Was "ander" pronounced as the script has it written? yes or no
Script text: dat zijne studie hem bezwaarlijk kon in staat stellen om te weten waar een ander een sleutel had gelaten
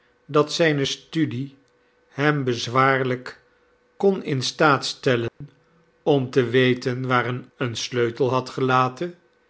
no